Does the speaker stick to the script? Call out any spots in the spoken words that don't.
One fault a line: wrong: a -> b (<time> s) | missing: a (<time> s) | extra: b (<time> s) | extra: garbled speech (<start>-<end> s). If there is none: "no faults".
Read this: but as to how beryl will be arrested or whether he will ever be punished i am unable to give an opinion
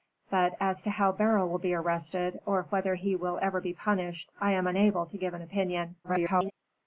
extra: garbled speech (6.0-6.5 s)